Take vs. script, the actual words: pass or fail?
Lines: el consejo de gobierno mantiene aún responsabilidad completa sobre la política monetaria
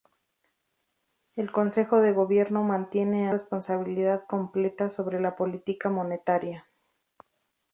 fail